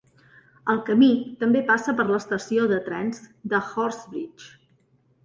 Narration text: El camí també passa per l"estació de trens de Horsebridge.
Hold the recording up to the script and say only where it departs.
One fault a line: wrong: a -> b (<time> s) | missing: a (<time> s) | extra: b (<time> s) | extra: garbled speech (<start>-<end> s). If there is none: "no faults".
no faults